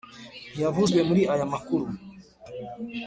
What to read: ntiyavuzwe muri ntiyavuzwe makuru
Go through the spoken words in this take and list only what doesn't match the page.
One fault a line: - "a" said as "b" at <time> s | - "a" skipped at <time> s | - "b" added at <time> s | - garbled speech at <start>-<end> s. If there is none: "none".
- "ntiyavuzwe" said as "aya" at 1.3 s